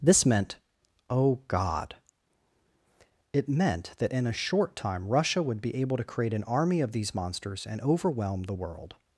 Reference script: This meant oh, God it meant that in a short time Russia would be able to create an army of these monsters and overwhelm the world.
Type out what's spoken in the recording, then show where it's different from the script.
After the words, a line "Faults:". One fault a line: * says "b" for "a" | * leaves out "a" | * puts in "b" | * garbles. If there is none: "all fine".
This meant oh, God it meant that in a short time Russia would be able to create an army of these monsters and overwhelm the world.
Faults:
all fine